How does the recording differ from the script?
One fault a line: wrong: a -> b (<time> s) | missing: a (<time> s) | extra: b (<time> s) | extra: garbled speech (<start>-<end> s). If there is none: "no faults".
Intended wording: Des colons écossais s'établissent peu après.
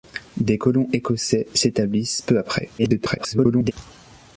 extra: garbled speech (2.8-3.7 s)